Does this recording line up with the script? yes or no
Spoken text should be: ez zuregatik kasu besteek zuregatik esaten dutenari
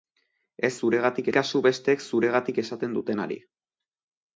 yes